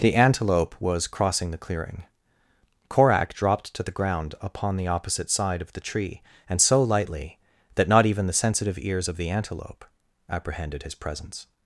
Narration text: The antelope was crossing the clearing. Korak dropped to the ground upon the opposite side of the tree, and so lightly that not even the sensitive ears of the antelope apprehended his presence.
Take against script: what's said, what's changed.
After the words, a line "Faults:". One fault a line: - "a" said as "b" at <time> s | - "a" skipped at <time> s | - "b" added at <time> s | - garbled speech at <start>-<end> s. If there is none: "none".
The antelope was crossing the clearing. Korak dropped to the ground upon the opposite side of the tree, and so lightly that not even the sensitive ears of the antelope apprehended his presence.
Faults:
none